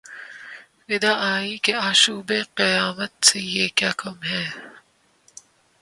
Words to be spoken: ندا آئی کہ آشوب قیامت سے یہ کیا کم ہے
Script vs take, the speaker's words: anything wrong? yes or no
no